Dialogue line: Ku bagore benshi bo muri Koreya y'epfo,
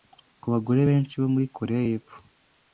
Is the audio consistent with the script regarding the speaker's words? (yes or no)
yes